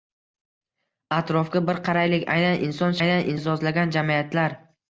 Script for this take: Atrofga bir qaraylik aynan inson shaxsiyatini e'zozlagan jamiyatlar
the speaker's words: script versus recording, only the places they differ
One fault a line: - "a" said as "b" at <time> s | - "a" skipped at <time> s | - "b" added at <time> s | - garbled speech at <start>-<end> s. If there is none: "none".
- "shaxsiyatini" said as "aynan" at 3.0 s